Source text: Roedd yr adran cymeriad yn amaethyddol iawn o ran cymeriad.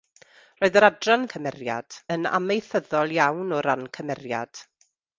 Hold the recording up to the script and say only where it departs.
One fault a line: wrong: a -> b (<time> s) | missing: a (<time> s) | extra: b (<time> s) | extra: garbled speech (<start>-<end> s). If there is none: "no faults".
no faults